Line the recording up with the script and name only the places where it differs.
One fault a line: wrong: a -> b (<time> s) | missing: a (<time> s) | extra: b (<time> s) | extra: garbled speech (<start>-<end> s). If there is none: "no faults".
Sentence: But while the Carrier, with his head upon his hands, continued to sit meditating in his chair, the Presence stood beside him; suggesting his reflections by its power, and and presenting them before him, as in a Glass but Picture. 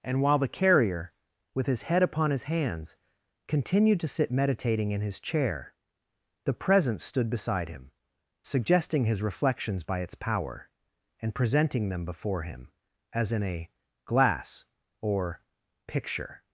wrong: But -> And (0.0 s)
missing: and (11.3 s)
wrong: but -> or (15.0 s)